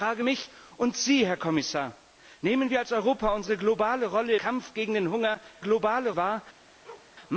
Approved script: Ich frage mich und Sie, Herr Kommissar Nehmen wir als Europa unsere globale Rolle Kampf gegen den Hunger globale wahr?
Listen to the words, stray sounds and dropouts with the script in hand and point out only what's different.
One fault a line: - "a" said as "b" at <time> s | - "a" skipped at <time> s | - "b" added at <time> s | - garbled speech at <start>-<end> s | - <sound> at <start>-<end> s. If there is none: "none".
- bark at 6.8-7.1 s